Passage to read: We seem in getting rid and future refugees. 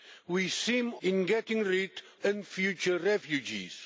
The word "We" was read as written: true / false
true